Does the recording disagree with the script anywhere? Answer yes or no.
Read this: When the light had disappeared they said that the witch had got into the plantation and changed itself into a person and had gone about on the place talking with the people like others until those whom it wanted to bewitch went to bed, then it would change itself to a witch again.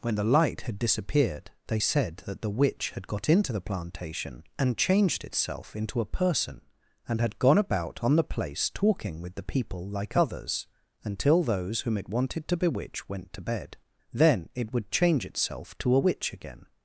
no